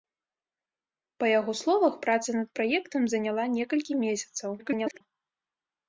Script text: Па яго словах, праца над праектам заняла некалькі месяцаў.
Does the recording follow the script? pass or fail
fail